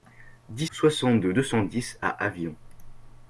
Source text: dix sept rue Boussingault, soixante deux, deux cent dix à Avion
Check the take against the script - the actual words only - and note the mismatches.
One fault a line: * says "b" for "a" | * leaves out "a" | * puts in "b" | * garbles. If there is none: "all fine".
* leaves out "sept rue Boussingault"